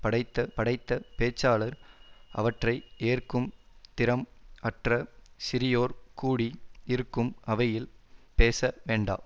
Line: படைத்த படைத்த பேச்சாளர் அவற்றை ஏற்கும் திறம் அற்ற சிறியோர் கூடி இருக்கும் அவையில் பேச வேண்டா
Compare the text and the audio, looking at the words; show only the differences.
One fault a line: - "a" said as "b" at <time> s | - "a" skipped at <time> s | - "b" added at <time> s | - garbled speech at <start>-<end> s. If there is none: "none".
none